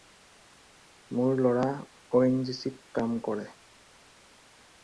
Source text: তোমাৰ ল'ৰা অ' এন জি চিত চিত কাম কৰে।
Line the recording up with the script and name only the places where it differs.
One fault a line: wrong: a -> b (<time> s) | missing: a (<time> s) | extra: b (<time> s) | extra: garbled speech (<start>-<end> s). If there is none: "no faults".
wrong: তোমাৰ -> মোৰ (1.1 s)
missing: চিত (2.8 s)